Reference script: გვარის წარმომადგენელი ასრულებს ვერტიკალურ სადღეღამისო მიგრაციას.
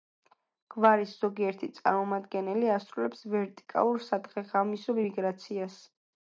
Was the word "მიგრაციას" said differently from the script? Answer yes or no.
no